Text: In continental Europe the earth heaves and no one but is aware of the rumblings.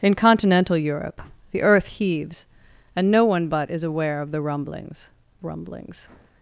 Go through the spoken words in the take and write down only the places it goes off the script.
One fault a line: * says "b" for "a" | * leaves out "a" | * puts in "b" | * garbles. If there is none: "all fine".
* puts in "rumblings"